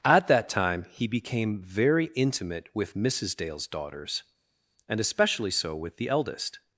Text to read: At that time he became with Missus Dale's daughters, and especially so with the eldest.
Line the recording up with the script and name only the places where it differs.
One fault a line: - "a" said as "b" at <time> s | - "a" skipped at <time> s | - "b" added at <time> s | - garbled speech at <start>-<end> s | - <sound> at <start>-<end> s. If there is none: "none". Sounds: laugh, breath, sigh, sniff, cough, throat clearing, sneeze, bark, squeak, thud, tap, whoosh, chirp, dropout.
- "very intimate" added at 1.6 s